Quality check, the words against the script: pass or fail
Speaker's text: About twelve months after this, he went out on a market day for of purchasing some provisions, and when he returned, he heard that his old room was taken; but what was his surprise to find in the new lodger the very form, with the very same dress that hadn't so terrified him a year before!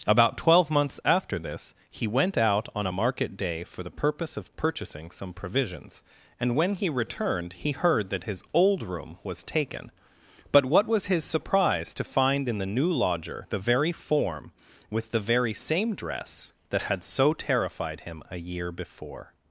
fail